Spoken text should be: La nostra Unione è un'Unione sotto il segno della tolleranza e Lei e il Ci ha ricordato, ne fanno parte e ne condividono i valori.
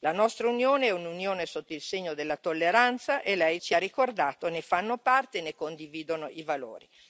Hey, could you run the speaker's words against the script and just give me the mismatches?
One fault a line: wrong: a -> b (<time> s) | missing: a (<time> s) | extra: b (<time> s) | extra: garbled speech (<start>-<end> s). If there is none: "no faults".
no faults